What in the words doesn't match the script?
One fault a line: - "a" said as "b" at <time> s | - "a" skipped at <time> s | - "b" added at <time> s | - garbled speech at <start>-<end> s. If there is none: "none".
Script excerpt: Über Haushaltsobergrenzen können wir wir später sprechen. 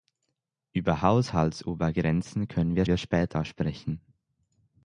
none